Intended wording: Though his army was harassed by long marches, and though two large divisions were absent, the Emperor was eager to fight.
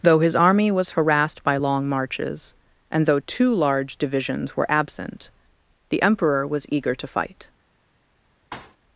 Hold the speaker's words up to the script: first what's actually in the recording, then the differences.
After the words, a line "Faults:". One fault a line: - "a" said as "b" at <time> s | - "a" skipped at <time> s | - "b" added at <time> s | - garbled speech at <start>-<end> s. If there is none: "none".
Though his army was harassed by long marches, and though two large divisions were absent, the Emperor was eager to fight.
Faults:
none